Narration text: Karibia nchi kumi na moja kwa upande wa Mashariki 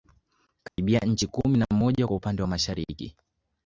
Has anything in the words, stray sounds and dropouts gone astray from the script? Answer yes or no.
yes